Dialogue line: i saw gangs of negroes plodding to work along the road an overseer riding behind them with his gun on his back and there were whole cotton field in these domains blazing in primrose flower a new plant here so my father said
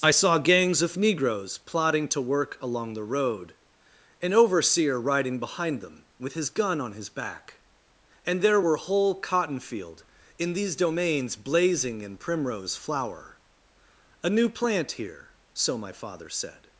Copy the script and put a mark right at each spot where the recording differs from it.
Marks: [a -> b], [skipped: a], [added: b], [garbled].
i saw gangs of negroes plodding to work along the road an overseer riding behind them with his gun on his back and there were whole cotton field in these domains blazing in primrose flower a new plant here so my father said